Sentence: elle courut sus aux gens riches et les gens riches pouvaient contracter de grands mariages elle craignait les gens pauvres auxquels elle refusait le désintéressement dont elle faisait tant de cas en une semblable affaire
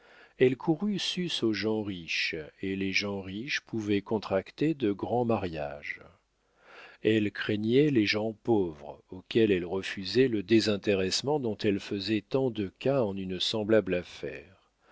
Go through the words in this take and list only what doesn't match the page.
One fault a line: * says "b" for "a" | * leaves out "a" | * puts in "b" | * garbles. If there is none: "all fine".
all fine